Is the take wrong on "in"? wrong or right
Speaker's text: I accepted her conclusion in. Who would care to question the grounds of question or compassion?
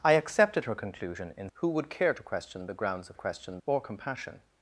right